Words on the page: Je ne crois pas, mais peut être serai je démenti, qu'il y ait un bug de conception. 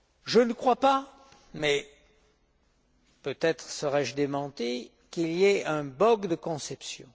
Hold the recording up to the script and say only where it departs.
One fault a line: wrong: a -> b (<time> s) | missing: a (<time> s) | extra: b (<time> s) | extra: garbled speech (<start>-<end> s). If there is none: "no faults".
no faults